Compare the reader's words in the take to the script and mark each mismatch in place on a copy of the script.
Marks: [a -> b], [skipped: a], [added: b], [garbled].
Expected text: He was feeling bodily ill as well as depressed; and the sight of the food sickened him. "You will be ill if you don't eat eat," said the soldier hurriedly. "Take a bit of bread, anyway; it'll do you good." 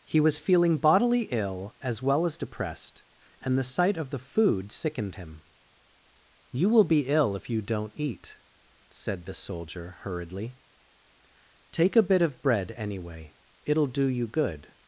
He was feeling bodily ill as well as depressed; and the sight of the food sickened him. "You will be ill if you don't eat [skipped: eat,"] said the soldier hurriedly. "Take a bit of bread, anyway; it'll do you good."